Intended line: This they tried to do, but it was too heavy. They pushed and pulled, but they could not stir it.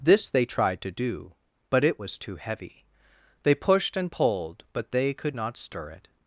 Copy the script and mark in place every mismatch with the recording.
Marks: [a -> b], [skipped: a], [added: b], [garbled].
This they tried to do, but it was too heavy. They pushed and pulled, but they could not stir it.